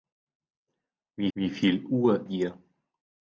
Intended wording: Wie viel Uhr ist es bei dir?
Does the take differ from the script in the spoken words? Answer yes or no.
yes